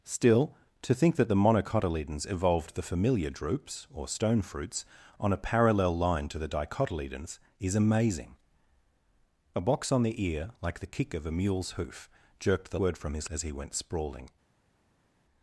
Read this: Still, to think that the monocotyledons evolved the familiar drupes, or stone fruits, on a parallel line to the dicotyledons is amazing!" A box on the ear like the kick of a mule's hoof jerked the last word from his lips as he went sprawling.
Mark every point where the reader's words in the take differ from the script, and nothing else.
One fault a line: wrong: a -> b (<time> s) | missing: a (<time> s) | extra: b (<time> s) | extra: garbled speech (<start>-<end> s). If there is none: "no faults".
missing: last (12.8 s)
missing: lips (13.3 s)